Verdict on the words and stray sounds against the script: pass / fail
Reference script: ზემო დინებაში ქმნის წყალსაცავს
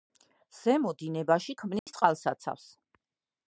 fail